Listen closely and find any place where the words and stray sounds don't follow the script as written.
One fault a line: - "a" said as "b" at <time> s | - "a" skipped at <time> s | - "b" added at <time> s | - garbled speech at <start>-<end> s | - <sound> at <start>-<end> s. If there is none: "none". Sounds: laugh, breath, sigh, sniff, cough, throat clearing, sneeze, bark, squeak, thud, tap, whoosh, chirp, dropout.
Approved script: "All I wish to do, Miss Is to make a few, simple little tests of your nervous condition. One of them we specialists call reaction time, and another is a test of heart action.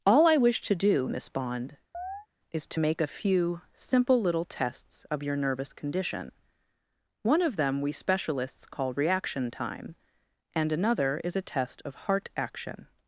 - "Bond" added at 1.3 s
- chirp at 1.9-2.3 s